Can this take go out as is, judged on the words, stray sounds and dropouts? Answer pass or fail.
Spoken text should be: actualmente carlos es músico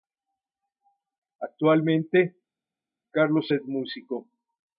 pass